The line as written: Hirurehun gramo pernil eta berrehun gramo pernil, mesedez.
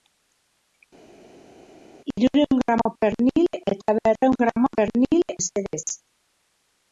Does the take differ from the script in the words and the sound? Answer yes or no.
no